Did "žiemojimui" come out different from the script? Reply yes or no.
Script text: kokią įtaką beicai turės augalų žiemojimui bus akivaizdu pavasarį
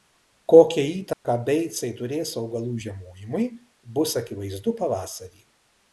no